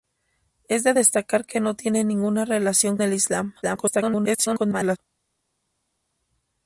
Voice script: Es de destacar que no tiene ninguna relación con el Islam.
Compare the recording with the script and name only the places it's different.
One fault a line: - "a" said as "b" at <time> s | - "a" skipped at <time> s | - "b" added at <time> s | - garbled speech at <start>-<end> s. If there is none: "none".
- "con" skipped at 3.0 s
- garbled speech at 3.6-5.0 s